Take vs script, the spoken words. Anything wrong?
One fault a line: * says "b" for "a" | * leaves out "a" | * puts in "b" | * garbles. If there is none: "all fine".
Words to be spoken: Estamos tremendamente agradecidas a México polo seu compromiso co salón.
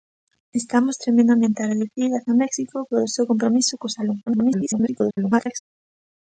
* garbles